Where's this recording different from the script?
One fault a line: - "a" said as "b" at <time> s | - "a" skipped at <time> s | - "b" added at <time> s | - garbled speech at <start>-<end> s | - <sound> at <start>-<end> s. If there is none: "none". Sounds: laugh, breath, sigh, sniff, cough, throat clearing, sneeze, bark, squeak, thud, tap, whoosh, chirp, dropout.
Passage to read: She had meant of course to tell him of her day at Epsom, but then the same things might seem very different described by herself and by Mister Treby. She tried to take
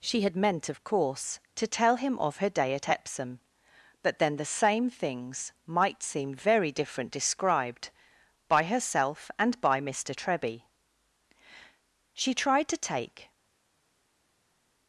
none